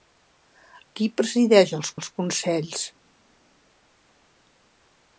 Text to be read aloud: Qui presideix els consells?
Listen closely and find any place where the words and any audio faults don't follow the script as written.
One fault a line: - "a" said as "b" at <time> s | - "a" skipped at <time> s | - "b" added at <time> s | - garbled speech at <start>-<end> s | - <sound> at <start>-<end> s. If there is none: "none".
- "els" added at 2.0 s